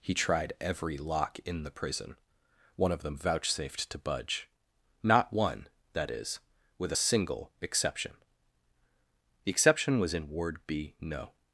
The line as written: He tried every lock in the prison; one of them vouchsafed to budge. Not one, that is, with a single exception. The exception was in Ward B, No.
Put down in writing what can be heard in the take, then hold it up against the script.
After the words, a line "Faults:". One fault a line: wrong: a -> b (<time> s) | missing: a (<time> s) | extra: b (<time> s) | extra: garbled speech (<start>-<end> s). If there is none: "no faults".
He tried every lock in the prison; one of them vouchsafed to budge. Not one, that is, with a single exception. The exception was in Ward B, No.
Faults:
no faults